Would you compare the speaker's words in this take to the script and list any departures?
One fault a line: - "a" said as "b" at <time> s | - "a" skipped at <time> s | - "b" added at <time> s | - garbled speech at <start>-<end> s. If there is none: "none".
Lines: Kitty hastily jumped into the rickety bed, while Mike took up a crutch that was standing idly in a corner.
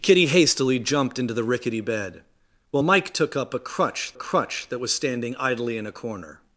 - "crutch" added at 4.1 s